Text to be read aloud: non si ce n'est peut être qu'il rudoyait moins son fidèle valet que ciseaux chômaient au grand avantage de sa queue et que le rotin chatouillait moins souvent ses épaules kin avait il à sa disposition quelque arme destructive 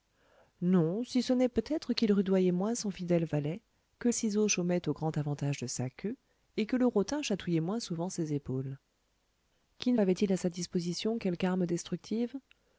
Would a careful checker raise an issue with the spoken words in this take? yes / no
no